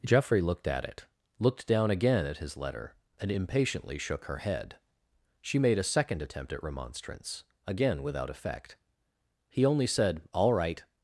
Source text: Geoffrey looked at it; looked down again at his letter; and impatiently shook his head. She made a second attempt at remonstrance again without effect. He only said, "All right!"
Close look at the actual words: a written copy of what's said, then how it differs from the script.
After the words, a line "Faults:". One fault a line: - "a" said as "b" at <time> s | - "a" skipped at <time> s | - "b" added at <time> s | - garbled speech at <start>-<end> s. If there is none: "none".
Geoffrey looked at it; looked down again at his letter; and impatiently shook her head. She made a second attempt at remonstrance again without effect. He only said, "All right!"
Faults:
- "his" said as "her" at 4.3 s